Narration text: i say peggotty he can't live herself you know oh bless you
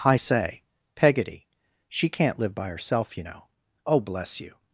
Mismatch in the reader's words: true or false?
true